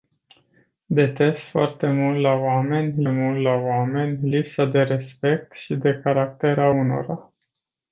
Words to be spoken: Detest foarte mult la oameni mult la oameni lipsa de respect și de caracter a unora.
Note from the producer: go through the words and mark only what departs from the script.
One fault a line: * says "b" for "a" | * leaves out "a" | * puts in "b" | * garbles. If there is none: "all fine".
all fine